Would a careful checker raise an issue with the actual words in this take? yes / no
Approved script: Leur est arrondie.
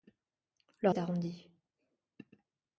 no